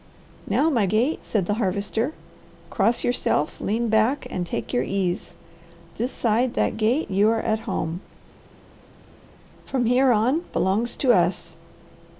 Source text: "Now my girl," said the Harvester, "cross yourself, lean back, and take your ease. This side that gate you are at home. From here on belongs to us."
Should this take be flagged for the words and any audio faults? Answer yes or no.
yes